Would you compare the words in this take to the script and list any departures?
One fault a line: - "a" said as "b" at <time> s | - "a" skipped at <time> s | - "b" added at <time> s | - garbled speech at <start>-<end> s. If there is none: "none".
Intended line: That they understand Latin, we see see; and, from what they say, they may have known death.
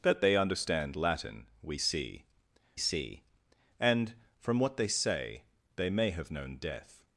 none